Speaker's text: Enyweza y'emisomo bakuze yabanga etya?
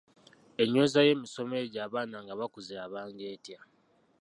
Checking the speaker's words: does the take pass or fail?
fail